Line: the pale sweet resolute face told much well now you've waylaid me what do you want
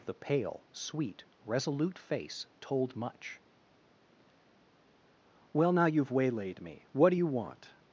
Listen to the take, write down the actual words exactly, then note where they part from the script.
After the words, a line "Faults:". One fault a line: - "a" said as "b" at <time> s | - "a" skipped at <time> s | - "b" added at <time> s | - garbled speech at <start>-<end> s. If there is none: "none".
the pale sweet resolute face told much well now you've waylaid me what do you want
Faults:
none